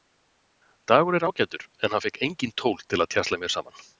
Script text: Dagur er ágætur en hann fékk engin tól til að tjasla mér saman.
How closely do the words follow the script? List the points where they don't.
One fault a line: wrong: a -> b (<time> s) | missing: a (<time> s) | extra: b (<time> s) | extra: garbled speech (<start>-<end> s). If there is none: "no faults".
no faults